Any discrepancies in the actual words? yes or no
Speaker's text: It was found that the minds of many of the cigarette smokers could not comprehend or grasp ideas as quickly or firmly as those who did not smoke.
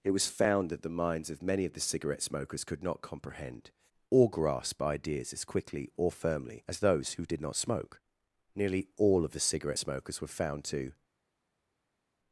yes